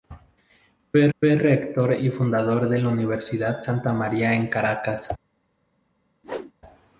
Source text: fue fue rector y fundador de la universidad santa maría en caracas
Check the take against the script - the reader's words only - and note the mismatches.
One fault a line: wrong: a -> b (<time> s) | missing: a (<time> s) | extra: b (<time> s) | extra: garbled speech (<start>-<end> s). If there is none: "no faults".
no faults